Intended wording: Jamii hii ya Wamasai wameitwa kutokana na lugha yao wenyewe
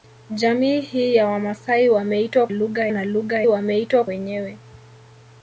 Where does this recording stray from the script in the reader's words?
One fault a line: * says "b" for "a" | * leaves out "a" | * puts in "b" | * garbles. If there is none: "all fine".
* says "lugha" for "kutokana"
* says "wameitwa" for "yao"